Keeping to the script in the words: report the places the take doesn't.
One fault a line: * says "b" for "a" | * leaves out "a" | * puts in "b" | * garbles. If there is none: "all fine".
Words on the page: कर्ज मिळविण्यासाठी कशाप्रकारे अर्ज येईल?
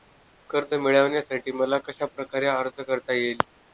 * puts in "मला"
* puts in "करता"